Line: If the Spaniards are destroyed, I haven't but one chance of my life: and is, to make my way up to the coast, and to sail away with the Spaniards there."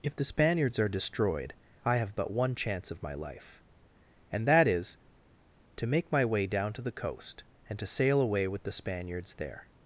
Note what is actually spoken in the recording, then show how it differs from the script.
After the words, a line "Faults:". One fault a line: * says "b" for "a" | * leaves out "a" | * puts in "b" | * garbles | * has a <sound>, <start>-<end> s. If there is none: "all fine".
If the Spaniards are destroyed, I have but one chance of my life: and that is, to make my way down to the coast, and to sail away with the Spaniards there."
Faults:
* says "have" for "haven't"
* puts in "that"
* says "down" for "up"